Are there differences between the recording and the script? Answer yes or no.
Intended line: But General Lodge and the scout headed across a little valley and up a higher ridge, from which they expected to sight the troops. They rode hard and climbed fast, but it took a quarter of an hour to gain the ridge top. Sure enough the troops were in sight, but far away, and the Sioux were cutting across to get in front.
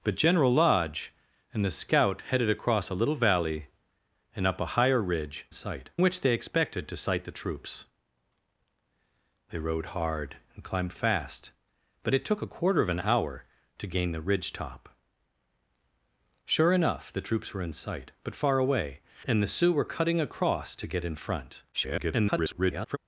yes